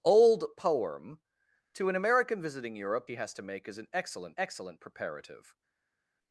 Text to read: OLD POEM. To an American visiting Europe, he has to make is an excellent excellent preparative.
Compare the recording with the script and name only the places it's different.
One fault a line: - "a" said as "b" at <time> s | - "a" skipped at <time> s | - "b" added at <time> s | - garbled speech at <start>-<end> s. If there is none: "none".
none